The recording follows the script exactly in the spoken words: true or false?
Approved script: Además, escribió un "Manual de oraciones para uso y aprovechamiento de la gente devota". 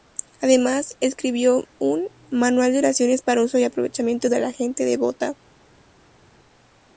true